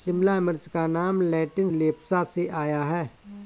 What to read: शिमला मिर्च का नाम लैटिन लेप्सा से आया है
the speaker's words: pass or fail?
pass